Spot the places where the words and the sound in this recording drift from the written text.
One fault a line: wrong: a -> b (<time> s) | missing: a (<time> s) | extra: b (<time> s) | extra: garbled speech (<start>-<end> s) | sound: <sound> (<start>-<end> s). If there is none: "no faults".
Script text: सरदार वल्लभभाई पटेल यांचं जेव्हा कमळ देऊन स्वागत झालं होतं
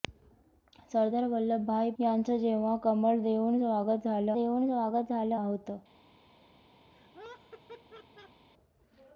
missing: पटेल (1.9 s)
extra: देऊन स्वागत झालं (4.3 s)
sound: laugh (6.9-8.4 s)